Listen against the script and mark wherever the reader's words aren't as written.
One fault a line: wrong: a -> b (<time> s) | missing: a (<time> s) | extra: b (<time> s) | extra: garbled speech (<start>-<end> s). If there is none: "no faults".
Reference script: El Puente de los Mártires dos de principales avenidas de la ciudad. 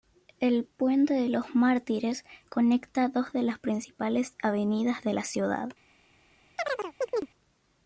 extra: conecta (2.5 s)
extra: las (3.4 s)